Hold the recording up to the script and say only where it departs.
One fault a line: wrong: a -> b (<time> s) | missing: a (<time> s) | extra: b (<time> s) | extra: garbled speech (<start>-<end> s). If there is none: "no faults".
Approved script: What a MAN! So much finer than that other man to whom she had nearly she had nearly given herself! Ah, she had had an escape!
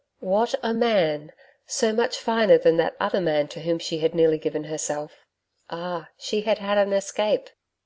missing: she had nearly (4.4 s)